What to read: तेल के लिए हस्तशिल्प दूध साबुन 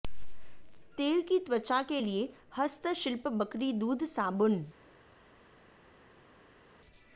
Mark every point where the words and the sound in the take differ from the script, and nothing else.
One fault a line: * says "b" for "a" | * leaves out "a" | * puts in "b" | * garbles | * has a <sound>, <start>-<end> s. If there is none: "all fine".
* puts in "की त्वचा"
* puts in "बकरी"